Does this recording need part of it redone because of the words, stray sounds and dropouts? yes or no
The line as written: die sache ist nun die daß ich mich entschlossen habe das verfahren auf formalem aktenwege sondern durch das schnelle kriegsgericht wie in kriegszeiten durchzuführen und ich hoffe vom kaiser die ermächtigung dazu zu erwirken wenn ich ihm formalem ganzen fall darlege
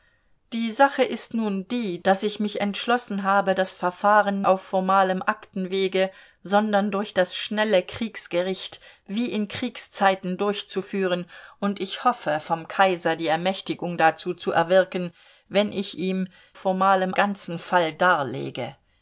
no